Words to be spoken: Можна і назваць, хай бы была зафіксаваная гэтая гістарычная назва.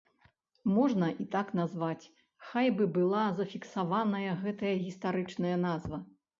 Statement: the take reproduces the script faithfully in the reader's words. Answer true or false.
false